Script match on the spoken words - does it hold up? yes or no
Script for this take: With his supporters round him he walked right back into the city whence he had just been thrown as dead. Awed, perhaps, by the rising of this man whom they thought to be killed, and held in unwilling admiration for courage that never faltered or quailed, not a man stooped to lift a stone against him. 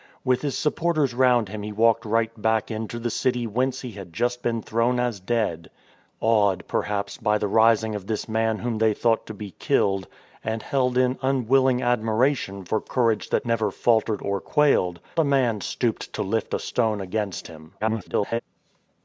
no